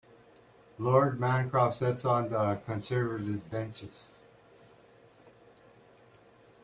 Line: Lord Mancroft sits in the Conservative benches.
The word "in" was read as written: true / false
false